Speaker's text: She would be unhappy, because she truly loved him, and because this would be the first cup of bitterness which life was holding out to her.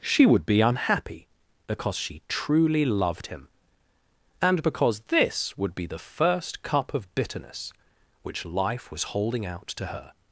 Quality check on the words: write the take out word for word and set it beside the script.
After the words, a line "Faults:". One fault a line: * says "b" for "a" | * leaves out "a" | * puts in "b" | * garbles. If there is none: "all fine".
She would be unhappy, because she truly loved him, and because this would be the first cup of bitterness which life was holding out to her.
Faults:
all fine